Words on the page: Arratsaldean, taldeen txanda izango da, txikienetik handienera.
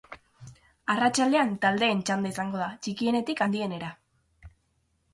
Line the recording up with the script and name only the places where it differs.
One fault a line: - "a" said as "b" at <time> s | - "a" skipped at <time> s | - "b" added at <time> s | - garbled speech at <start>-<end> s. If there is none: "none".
none